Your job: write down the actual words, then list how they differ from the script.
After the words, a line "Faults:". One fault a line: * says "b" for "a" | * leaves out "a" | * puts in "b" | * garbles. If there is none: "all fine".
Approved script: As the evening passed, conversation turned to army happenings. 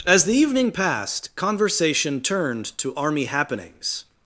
As the evening passed, conversation turned to army happenings.
Faults:
all fine